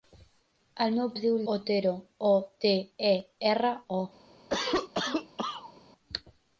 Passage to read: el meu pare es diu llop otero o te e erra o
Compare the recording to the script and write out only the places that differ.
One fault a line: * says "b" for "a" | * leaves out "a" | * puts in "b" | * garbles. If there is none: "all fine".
* leaves out "pare"
* leaves out "llop"